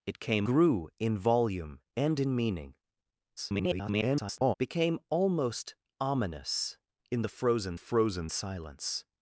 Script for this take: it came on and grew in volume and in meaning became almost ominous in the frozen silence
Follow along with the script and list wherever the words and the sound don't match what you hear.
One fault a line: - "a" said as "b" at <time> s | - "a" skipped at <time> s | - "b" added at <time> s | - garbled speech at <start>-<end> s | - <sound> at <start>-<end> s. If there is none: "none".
- "on and" skipped at 0.5 s
- garbled speech at 3.4-4.5 s
- "frozen" added at 7.7 s